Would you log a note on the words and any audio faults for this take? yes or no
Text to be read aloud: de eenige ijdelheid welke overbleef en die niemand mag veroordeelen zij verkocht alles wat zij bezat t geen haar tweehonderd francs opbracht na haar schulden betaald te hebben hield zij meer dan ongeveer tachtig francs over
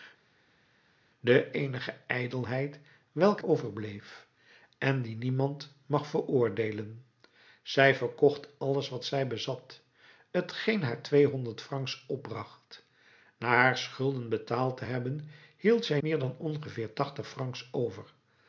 no